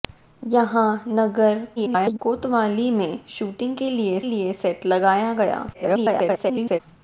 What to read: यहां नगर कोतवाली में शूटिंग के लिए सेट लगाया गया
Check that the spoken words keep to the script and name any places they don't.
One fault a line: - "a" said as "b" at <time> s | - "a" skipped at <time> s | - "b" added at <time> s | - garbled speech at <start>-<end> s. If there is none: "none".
- garbled speech at 1.8-2.2 s
- "लिए" added at 4.2 s
- garbled speech at 5.7-6.8 s